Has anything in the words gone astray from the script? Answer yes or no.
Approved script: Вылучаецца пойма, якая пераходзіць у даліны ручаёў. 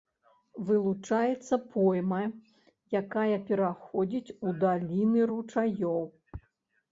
no